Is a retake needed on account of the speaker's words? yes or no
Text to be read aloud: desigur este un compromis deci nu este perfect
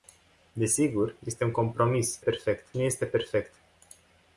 yes